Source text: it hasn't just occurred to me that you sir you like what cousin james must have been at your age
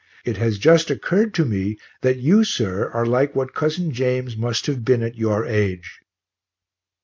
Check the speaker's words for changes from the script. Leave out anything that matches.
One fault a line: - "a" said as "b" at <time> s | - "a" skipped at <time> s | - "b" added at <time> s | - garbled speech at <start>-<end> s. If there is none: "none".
- "hasn't" said as "has" at 0.4 s
- "you" said as "are" at 2.9 s